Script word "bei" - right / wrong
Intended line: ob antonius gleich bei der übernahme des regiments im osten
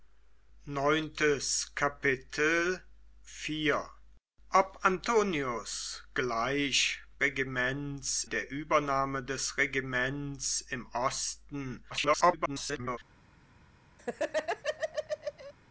wrong